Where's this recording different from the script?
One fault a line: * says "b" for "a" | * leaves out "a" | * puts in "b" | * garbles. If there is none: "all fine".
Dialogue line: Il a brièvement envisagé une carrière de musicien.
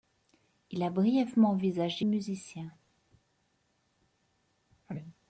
* leaves out "une carrière de"